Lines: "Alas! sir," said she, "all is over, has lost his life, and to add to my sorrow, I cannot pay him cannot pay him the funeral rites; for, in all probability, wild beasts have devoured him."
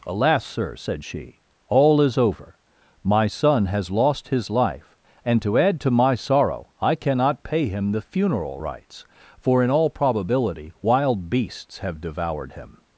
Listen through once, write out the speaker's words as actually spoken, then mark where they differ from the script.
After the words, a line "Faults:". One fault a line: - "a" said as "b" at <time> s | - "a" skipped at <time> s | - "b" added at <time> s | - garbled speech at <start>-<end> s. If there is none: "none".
"Alas! sir," said she, "all is over, my son has lost his life, and to add to my sorrow, I cannot pay him the funeral rites; for, in all probability, wild beasts have devoured him."
Faults:
- "my son" added at 3.0 s
- "cannot pay him" skipped at 7.9 s